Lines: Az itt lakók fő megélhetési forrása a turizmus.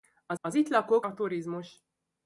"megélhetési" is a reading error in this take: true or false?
true